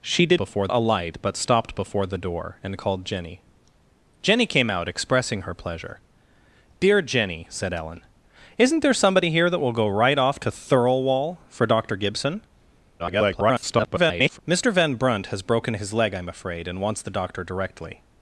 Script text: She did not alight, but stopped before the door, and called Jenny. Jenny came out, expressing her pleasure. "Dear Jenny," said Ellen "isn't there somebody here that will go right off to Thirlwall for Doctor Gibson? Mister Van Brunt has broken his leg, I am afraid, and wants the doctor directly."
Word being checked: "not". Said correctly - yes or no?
no